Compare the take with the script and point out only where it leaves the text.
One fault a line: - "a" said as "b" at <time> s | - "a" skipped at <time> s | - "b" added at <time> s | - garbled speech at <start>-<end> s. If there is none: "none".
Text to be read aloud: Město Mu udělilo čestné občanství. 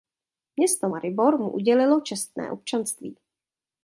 - "Maribor" added at 0.9 s